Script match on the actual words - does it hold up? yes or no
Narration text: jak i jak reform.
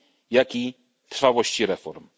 no